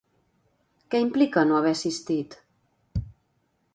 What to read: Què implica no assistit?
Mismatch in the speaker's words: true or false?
true